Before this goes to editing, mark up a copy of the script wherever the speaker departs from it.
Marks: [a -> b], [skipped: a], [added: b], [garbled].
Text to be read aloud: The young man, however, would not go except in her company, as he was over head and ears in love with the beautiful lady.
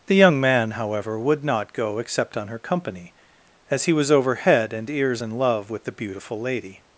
The young man, however, would not go except [in -> on] her company, as he was over head and ears in love with the beautiful lady.